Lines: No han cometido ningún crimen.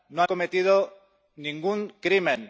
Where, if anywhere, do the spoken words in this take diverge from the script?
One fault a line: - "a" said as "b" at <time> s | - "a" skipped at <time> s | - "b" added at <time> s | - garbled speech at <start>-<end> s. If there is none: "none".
- "han" skipped at 0.2 s